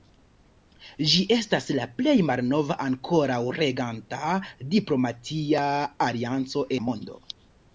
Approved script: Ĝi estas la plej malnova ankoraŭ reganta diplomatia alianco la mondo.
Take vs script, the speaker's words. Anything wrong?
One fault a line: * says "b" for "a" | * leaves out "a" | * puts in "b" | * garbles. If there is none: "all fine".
all fine